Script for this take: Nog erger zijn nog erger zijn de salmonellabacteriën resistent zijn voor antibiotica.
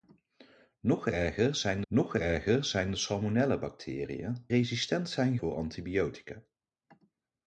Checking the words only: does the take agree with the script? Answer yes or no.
yes